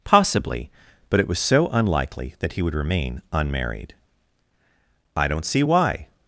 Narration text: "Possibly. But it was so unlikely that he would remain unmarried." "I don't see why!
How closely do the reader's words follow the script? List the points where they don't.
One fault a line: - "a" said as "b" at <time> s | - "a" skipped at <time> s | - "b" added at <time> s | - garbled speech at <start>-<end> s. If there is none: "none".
none